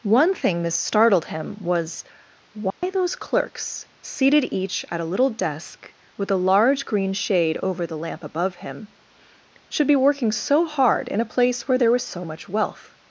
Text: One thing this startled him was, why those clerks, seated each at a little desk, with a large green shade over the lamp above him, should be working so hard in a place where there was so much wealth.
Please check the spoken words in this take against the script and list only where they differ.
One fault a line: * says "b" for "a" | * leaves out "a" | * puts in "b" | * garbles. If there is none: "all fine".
all fine